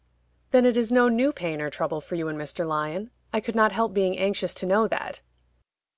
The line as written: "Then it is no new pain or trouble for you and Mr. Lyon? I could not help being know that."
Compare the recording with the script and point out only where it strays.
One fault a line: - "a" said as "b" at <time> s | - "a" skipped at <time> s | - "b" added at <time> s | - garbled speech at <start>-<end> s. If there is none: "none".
- "anxious to" added at 4.2 s